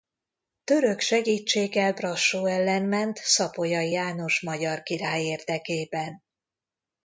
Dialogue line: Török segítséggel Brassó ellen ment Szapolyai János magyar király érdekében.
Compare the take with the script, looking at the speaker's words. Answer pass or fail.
pass